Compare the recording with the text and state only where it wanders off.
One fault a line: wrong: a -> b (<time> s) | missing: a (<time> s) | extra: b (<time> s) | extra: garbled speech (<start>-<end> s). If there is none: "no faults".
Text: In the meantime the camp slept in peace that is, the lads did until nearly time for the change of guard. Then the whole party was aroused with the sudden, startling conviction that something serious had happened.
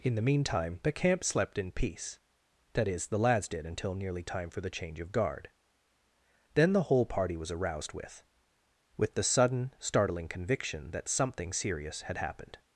extra: with (9.0 s)